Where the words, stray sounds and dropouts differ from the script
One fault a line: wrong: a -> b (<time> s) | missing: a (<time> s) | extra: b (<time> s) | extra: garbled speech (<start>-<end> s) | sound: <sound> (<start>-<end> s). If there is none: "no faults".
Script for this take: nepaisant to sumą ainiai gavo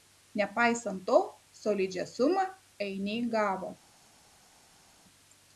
extra: solidžią (1.6 s)